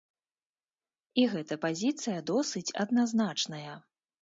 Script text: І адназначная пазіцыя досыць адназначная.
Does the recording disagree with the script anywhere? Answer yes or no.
yes